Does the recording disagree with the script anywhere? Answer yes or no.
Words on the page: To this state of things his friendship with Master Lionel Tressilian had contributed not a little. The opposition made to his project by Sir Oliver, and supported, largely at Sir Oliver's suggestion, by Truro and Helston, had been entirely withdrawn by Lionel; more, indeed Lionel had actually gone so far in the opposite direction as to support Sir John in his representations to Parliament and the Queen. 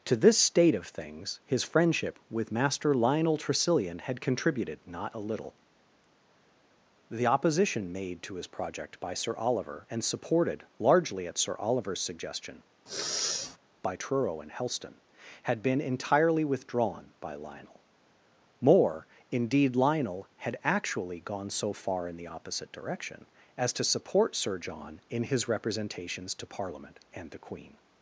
no